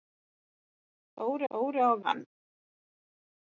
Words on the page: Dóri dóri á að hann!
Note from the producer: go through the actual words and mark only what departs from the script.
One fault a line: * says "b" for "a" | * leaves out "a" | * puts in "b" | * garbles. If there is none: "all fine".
all fine